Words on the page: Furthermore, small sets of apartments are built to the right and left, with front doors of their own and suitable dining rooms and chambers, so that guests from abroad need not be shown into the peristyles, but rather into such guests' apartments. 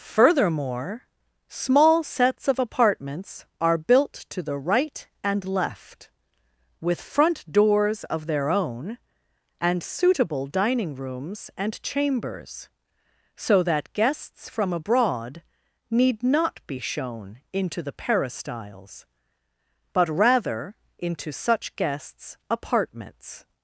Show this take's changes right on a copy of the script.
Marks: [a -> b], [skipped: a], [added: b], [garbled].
Furthermore, small sets of apartments are built to the right and left, with front doors of their own and suitable dining rooms and chambers, so that guests from abroad need not be shown into the peristyles, but rather into such guests' apartments.